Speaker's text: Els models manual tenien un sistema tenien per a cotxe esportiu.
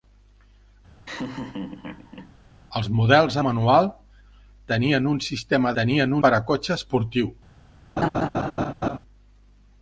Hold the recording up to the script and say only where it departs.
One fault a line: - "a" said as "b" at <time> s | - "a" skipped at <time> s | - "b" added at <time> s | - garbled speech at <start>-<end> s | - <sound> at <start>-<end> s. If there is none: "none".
- laugh at 1.1-2.3 s
- laugh at 8.0-9.0 s